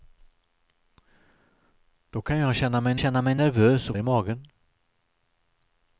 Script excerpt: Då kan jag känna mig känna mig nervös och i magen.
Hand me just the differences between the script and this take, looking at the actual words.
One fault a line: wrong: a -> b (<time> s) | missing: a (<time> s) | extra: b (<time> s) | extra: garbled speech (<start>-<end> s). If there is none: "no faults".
no faults